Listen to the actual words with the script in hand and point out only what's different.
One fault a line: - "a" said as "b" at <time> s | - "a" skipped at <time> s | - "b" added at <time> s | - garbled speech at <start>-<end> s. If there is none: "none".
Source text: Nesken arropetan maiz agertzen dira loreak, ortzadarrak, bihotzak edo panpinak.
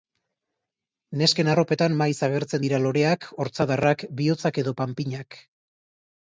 none